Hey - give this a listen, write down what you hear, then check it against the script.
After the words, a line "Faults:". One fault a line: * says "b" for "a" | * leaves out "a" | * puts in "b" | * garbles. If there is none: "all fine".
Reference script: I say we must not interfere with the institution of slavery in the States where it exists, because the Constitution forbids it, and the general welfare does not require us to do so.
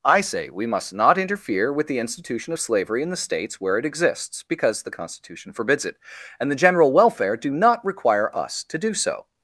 I say we must not interfere with the institution of slavery in the States where it exists, because the Constitution forbids it, and the general welfare do not require us to do so.
Faults:
* says "do" for "does"